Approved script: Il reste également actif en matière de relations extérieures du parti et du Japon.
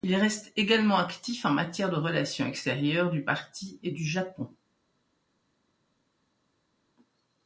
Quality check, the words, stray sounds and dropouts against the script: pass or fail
pass